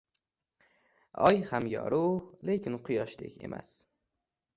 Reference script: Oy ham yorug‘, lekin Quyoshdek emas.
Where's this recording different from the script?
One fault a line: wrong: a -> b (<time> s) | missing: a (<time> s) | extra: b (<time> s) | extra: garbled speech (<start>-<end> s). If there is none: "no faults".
no faults